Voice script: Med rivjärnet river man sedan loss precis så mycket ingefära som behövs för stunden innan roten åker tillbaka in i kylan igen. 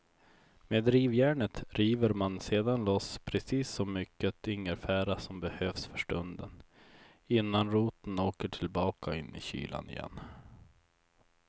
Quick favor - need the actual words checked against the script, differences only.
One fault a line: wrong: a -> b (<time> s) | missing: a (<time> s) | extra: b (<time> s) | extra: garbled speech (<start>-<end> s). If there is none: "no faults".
no faults